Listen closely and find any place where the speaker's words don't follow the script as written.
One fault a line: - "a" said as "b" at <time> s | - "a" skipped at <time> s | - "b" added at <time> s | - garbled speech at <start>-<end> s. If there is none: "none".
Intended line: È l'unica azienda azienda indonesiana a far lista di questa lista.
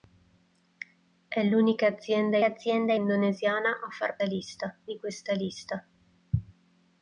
none